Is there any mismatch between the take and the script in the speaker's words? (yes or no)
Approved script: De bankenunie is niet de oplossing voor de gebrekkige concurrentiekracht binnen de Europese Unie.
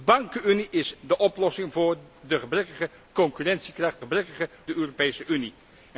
yes